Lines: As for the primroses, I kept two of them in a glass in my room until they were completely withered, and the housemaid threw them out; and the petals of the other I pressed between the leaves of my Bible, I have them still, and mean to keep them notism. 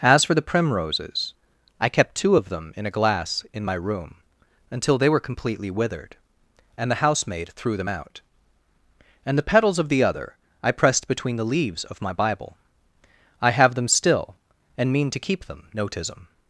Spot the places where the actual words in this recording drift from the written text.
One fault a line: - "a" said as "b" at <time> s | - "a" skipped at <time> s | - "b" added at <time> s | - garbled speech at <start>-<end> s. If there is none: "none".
none